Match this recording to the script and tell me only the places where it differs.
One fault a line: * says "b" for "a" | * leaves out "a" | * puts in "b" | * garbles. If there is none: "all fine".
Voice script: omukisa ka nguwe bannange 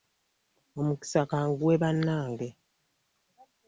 all fine